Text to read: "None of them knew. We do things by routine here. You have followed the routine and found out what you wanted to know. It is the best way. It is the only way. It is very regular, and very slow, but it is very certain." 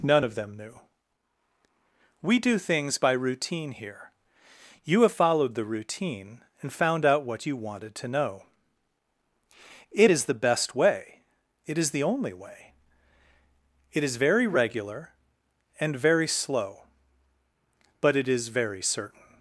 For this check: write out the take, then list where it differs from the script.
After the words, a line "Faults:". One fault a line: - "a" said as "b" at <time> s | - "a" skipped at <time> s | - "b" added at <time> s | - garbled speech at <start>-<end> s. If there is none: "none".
"None of them knew. We do things by routine here. You have followed the routine and found out what you wanted to know. It is the best way. It is the only way. It is very regular, and very slow, but it is very certain."
Faults:
none